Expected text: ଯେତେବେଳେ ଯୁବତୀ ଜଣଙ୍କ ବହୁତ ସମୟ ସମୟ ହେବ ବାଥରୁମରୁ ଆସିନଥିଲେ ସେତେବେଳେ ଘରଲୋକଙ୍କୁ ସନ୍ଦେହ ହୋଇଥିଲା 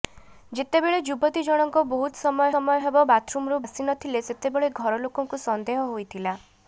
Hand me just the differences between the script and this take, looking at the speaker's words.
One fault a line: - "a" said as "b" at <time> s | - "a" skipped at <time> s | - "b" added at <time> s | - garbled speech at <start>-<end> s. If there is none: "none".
none